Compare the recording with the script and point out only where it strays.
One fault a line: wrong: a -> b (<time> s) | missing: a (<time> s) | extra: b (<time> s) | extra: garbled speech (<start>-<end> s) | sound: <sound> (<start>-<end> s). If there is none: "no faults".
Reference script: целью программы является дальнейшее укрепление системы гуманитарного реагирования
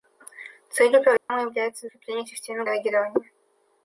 sound: dropout (1.2-1.3 s)
missing: дальнейшее (1.9 s)
missing: гуманитарного (2.6 s)